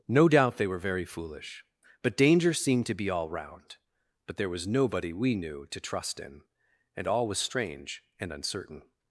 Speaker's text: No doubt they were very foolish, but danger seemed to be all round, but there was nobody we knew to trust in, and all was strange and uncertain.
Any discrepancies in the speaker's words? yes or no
no